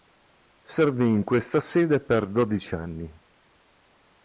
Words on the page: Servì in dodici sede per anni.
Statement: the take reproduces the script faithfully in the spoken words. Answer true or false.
false